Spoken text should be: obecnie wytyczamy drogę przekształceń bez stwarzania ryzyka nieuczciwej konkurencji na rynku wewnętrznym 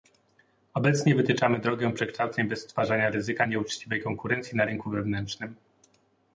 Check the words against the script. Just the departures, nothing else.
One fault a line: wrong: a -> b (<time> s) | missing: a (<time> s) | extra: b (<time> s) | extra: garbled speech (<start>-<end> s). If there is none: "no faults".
no faults